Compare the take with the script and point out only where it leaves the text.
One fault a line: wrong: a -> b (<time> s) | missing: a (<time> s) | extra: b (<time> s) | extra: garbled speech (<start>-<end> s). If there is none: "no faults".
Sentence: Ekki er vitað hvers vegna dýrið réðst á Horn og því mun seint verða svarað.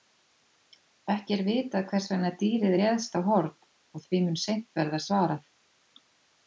no faults